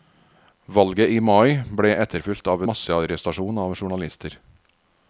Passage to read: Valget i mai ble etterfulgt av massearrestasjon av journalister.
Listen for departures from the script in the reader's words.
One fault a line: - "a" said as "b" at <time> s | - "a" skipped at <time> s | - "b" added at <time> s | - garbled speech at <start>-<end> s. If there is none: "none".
none